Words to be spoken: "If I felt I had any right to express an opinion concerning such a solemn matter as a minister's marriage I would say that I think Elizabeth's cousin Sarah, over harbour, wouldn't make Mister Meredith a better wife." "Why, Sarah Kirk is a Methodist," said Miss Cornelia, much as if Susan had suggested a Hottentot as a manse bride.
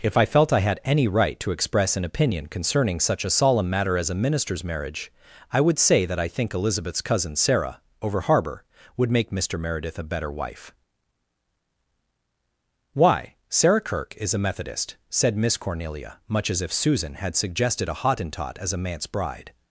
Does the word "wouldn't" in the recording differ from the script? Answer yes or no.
yes